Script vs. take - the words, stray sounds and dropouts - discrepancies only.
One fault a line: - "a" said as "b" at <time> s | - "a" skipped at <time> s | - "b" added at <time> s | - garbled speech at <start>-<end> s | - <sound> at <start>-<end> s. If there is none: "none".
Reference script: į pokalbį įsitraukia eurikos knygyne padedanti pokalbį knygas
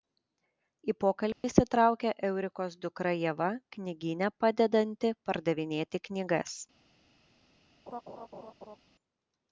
- dropout at 1.3-1.4 s
- "dukra ieva" added at 2.9 s
- "pokalbį" said as "pardavinėti" at 5.3 s
- laugh at 7.9-8.8 s